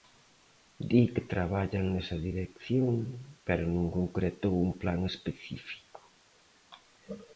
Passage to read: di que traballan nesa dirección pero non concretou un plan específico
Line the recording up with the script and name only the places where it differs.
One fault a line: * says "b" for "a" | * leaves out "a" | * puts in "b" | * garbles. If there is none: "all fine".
all fine